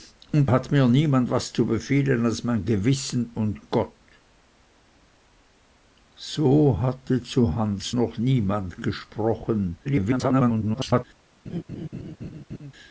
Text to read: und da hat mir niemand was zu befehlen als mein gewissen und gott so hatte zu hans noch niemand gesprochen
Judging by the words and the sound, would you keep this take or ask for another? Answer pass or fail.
fail